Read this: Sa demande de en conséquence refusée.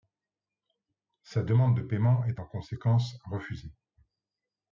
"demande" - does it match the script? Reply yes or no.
yes